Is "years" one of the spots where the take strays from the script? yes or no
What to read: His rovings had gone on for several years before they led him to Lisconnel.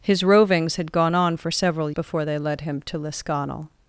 yes